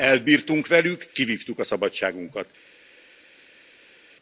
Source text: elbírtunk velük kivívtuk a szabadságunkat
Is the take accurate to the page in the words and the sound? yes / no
yes